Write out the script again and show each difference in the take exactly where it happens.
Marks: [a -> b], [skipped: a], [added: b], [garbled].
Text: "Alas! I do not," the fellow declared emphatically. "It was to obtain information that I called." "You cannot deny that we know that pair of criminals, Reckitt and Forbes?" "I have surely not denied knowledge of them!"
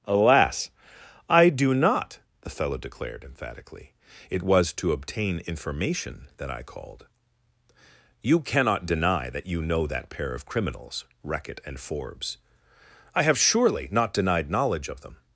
"Alas! I do not," the fellow declared emphatically. "It was to obtain information that I called." "You cannot deny that [we -> you] know that pair of criminals, Reckitt and Forbes?" "I have surely not denied knowledge of them!"